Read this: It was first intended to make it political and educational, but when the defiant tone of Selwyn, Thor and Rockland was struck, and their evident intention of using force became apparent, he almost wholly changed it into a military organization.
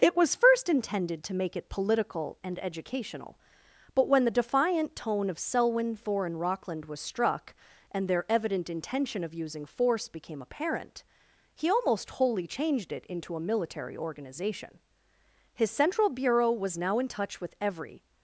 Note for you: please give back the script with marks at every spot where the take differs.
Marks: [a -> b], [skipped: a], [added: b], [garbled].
It was first intended to make it political and educational, but when the defiant tone of Selwyn, Thor and Rockland was struck, and their evident intention of using force became apparent, he almost wholly changed it into a military organization. [added: His central bureau was now in touch with every]